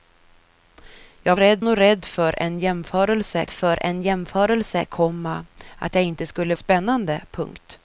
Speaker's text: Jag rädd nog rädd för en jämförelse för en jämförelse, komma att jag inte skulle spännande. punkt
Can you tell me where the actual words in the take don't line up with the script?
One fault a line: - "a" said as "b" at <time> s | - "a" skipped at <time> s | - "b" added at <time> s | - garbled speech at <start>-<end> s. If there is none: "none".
none